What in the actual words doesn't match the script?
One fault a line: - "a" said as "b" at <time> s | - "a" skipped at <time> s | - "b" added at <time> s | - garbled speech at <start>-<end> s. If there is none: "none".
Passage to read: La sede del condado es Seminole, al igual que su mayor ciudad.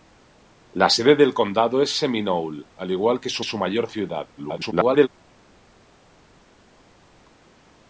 - "su" added at 3.4 s
- garbled speech at 4.4-5.1 s